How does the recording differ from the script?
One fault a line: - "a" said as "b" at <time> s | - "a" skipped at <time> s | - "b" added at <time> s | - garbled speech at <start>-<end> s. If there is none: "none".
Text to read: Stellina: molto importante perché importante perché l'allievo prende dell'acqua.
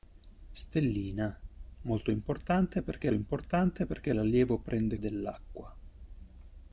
none